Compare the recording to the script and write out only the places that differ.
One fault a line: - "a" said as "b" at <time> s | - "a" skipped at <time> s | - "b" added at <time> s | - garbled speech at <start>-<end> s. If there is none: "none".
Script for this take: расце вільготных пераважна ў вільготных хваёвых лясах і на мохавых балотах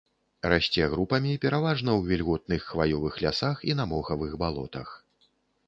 - "вільготных" said as "групамі" at 0.9 s